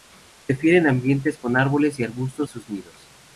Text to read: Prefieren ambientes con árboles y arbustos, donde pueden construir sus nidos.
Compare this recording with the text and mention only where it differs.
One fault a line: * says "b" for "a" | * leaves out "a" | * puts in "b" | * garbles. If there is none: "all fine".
* leaves out "donde pueden construir"